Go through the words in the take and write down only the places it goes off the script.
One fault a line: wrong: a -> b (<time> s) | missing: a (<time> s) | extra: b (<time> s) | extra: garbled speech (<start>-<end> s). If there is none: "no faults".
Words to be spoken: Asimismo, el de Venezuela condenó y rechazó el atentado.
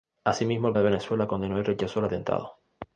no faults